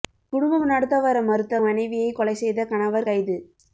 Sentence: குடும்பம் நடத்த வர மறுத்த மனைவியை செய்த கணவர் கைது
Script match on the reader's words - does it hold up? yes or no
no